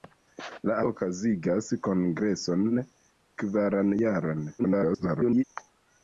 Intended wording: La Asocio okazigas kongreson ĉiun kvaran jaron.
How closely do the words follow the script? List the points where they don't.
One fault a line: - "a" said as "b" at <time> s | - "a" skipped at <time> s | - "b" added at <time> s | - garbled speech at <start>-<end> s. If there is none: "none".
- "Asocio" skipped at 0.8 s
- "ĉiun" skipped at 2.7 s
- garbled speech at 4.6-5.4 s